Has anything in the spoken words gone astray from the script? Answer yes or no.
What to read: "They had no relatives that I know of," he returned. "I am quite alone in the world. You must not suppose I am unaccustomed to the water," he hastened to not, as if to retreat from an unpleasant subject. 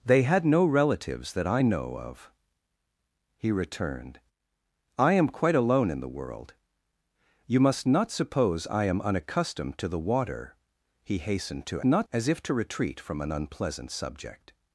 no